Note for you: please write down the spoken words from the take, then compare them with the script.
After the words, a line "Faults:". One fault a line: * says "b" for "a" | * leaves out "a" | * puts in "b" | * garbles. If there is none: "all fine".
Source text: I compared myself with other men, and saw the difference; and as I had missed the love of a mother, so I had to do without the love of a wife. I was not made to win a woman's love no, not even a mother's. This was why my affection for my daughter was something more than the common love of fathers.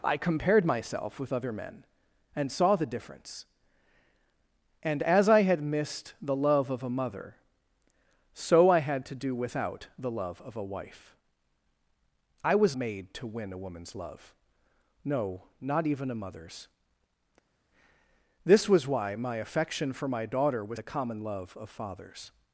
I compared myself with other men, and saw the difference; and as I had missed the love of a mother, so I had to do without the love of a wife. I was made to win a woman's love no, not even a mother's. This was why my affection for my daughter was the common love of fathers.
Faults:
* leaves out "not"
* leaves out "something more than"